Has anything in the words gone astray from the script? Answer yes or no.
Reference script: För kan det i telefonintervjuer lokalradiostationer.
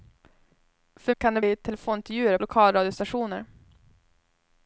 no